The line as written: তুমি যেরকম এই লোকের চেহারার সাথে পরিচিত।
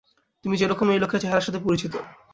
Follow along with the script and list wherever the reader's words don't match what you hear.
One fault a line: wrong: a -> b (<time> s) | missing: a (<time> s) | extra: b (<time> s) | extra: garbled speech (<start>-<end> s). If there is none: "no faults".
no faults